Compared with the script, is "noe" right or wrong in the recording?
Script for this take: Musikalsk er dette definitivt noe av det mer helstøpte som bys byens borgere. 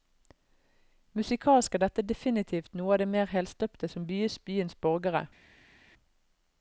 right